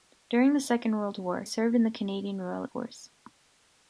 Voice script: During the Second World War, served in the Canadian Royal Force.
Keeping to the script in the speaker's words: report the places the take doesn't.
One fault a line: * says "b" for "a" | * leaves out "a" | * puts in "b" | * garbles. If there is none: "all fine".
all fine